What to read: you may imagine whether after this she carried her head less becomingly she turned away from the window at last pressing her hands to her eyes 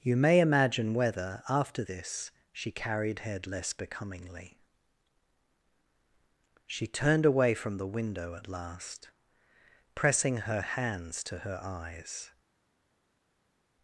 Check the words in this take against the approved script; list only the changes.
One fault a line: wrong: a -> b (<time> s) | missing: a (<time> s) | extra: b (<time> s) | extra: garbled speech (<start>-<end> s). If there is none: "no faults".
missing: her (3.2 s)